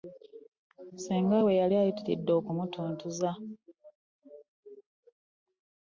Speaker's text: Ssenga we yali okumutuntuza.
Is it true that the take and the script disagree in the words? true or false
true